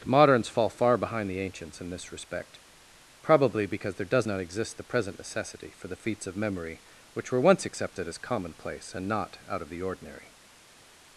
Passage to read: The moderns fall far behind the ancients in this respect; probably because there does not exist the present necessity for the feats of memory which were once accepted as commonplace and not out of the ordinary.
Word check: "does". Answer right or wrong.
right